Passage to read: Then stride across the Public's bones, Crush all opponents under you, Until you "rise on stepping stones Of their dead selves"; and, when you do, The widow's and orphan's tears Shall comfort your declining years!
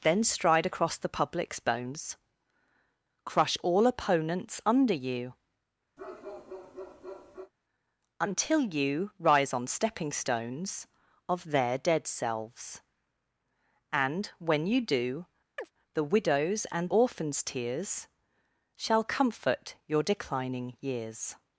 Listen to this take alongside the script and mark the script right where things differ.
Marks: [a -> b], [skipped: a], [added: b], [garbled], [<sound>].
Then stride across the Public's bones, Crush all opponents under you, [bark] Until you "rise on stepping stones Of their dead selves"; and, when you do, [chirp] The widow's and orphan's tears Shall comfort your declining years!